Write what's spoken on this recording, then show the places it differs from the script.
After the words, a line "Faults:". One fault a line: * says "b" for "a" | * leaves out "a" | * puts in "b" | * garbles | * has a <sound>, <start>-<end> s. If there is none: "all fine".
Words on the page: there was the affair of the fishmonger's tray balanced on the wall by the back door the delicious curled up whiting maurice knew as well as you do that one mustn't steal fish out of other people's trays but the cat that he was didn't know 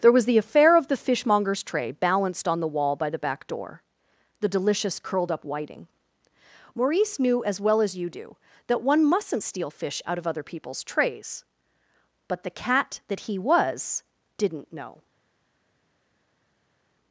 there was the affair of the fishmonger's tray balanced on the wall by the back door the delicious curled up whiting maurice knew as well as you do that one mustn't steal fish out of other people's trays but the cat that he was didn't know
Faults:
all fine